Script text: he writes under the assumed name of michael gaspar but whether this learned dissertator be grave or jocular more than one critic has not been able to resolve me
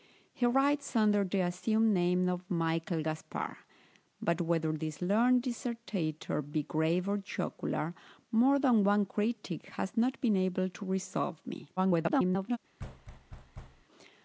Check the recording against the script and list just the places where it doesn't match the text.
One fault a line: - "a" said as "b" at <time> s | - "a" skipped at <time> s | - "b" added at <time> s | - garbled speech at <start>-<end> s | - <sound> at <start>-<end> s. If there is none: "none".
- garbled speech at 11.8-12.6 s
- thud at 12.8-13.8 s